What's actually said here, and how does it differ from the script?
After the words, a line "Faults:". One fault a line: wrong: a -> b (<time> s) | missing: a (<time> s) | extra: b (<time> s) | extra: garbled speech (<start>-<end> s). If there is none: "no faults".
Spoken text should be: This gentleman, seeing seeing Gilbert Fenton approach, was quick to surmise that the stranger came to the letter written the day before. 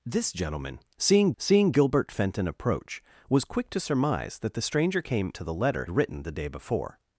This gentleman, seeing seeing Gilbert Fenton approach, was quick to surmise that the stranger came to the letter written the day before.
Faults:
no faults